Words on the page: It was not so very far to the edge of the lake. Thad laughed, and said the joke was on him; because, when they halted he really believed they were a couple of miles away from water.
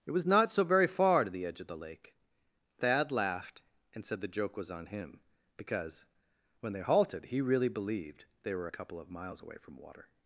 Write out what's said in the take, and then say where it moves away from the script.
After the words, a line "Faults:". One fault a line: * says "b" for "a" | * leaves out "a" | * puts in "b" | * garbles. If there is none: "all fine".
It was not so very far to the edge of the lake. Thad laughed, and said the joke was on him; because, when they halted he really believed they were a couple of miles away from water.
Faults:
all fine